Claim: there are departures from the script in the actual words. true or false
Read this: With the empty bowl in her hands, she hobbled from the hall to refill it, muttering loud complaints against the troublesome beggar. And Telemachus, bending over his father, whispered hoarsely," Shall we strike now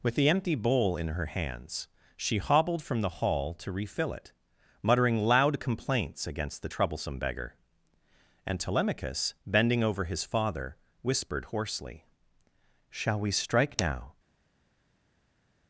false